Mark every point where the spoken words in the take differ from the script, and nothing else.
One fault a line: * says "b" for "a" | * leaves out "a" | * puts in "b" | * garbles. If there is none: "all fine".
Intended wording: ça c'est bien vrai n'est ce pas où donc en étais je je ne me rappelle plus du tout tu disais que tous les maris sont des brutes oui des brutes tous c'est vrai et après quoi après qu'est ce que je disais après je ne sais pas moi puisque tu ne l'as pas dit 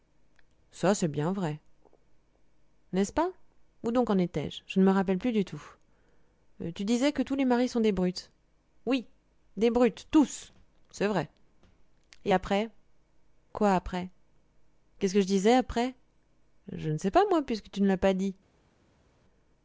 all fine